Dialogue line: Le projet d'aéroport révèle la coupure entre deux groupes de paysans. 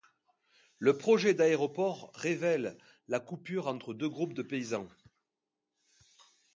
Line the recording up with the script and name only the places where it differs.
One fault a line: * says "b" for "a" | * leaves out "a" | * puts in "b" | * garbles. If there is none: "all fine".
all fine